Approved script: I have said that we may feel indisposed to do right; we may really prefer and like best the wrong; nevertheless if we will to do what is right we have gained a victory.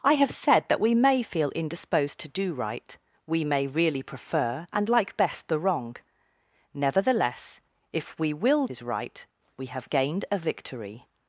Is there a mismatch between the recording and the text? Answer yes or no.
yes